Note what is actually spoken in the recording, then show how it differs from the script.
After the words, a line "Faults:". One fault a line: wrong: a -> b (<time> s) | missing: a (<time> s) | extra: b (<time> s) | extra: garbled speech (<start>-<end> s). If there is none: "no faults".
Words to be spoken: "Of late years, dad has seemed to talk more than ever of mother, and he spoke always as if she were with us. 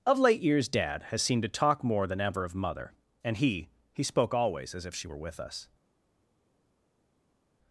"Of late years, dad has seemed to talk more than ever of mother, and he he spoke always as if she were with us.
Faults:
extra: he (3.9 s)